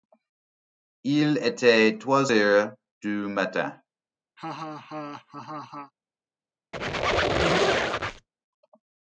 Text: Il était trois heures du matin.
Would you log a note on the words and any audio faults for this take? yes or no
yes